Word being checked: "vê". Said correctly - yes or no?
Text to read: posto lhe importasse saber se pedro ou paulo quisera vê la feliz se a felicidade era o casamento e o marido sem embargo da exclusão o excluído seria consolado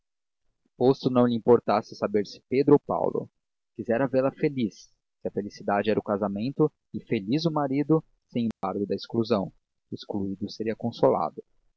yes